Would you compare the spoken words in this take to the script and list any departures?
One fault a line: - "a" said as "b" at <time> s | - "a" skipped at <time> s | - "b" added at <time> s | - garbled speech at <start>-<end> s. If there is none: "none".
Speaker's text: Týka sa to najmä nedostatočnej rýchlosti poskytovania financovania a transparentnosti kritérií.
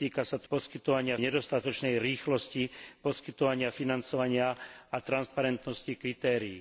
- "najmä" said as "poskytovania" at 0.5 s